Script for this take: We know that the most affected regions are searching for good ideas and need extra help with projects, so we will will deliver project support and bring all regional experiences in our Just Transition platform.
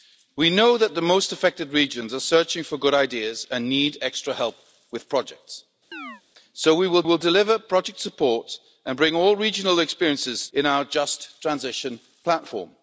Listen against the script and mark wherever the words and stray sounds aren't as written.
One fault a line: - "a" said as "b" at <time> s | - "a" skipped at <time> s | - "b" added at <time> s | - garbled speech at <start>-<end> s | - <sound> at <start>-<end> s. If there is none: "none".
- chirp at 5.9-6.2 s